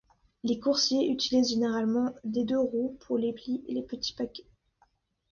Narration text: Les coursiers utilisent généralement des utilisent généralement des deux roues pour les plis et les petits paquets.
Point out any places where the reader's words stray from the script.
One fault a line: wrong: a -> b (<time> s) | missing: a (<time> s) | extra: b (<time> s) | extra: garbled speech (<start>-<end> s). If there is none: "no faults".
missing: utilisent généralement des (2.4 s)